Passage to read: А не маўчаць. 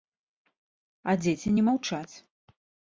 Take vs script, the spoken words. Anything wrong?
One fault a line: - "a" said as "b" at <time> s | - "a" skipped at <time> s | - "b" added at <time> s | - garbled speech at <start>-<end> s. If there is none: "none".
- "дзеці" added at 1.3 s